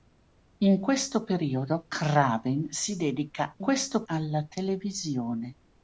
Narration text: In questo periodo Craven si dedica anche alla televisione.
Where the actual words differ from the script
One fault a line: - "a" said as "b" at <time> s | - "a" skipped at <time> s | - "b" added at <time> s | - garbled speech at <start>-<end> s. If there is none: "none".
- "anche" said as "questo" at 3.6 s